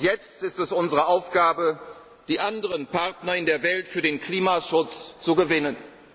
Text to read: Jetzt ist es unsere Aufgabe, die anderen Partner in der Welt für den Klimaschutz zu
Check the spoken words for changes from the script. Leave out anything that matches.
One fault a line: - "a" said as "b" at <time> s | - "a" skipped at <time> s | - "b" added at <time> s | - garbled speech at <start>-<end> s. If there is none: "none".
none